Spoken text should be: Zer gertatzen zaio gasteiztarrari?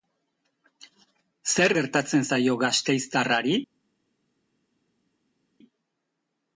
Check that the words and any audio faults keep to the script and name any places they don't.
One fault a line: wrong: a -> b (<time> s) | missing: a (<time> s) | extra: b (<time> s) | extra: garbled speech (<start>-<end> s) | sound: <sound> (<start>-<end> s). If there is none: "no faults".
no faults